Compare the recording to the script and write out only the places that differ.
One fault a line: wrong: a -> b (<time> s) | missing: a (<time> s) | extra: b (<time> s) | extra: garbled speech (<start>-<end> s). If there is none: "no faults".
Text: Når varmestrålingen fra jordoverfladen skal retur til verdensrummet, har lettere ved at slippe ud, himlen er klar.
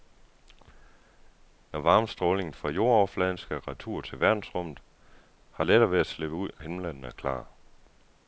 no faults